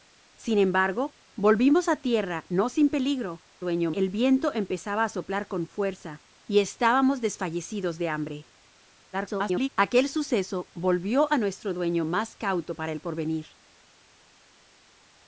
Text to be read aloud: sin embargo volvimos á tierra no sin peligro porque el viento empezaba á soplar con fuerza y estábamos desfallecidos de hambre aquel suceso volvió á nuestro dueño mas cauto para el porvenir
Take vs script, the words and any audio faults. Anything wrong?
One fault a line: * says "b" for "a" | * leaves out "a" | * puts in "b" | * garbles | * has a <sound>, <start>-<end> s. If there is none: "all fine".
* says "dueño" for "porque"
* garbles